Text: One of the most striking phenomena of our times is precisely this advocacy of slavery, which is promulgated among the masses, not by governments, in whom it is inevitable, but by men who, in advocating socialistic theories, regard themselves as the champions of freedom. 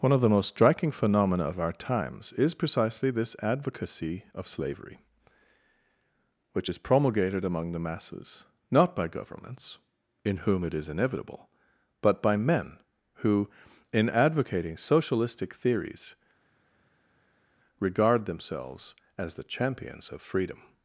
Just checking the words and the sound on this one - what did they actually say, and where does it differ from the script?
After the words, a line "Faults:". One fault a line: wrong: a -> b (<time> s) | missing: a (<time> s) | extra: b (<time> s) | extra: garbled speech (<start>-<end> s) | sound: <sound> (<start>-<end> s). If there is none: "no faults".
One of the most striking phenomena of our times is precisely this advocacy of slavery, which is promulgated among the masses, not by governments, in whom it is inevitable, but by men who, in advocating socialistic theories, regard themselves as the champions of freedom.
Faults:
no faults